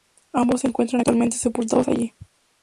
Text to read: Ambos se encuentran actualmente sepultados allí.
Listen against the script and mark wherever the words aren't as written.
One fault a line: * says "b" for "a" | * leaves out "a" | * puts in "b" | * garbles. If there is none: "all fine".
all fine